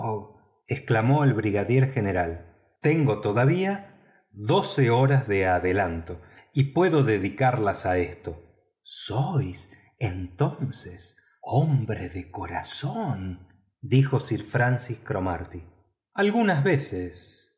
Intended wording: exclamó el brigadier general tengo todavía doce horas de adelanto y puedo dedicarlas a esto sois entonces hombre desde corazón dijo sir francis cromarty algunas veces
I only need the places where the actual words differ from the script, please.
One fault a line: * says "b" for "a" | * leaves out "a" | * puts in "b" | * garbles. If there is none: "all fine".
* says "de" for "desde"